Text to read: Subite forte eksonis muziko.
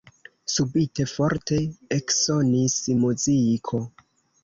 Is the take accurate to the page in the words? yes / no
yes